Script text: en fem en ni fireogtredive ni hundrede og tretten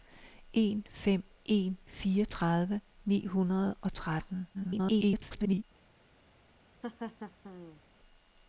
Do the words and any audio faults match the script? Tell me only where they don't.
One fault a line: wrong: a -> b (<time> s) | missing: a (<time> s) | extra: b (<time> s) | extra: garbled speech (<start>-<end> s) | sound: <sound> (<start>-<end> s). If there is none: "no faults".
missing: ni (1.8 s)
extra: garbled speech (4.5-5.6 s)
sound: laugh (6.8-7.8 s)